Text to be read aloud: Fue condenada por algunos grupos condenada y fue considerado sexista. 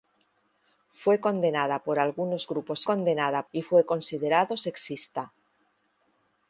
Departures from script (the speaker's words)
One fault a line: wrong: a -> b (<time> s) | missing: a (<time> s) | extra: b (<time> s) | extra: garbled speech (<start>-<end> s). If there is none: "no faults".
no faults